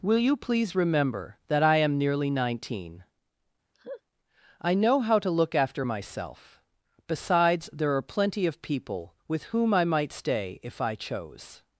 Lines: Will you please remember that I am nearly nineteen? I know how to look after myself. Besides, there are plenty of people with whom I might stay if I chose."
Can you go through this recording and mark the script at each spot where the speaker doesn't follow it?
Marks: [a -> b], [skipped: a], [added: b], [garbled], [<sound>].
Will you please remember that I am nearly nineteen? [laugh] I know how to look after myself. Besides, there are plenty of people with whom I might stay if I chose."